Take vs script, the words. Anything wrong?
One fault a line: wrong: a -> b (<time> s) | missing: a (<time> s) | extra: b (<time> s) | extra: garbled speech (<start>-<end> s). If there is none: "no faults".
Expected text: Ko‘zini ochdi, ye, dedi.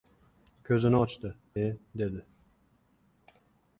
no faults